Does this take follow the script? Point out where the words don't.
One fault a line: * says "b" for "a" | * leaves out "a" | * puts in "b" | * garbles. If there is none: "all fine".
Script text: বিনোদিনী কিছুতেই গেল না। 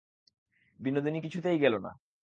all fine